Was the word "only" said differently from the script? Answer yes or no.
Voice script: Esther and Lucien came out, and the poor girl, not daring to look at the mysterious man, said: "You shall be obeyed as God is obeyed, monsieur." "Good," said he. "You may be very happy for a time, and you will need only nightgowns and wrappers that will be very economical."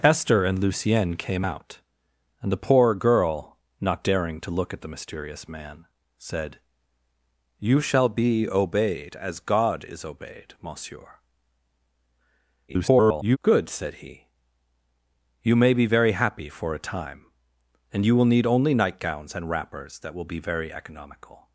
no